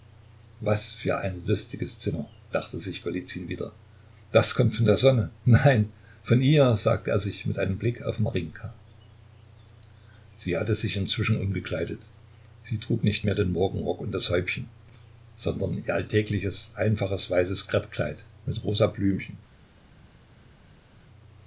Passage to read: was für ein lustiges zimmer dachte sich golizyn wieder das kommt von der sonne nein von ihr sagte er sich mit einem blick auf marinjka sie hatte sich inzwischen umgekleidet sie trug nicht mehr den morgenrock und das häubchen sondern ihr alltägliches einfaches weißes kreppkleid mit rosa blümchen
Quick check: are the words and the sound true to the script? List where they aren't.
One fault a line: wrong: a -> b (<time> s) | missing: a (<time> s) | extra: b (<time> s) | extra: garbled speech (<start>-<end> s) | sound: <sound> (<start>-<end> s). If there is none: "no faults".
no faults